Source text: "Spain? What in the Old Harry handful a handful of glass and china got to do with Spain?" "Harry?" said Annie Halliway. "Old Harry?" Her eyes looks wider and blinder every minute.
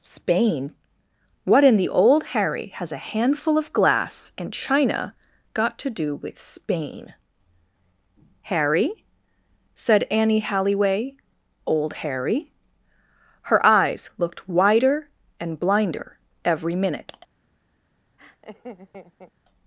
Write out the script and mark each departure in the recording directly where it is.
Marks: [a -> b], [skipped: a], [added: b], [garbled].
"Spain? What in the Old Harry [handful -> has] a handful of glass and china got to do with Spain?" "Harry?" said Annie Halliway. "Old Harry?" Her eyes [looks -> looked] wider and blinder every minute.